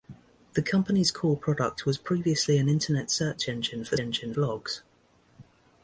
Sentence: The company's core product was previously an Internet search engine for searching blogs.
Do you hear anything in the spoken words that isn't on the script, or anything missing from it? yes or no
yes